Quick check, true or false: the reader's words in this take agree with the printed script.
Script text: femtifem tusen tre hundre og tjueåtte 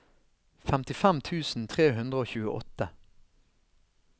true